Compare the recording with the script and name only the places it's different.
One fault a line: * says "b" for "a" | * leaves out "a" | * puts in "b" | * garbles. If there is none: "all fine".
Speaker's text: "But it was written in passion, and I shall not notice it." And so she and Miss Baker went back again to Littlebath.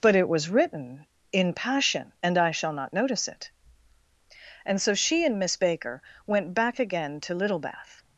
all fine